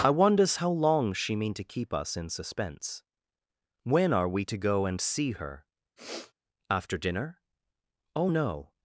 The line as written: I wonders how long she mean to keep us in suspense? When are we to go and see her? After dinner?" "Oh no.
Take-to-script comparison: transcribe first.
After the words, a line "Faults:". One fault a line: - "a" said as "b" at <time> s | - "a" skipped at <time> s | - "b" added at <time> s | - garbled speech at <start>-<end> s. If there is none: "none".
I wonders how long she mean to keep us in suspense? When are we to go and see her? After dinner?" "Oh no.
Faults:
none